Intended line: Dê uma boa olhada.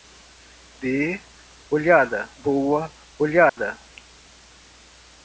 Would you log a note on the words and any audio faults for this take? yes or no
yes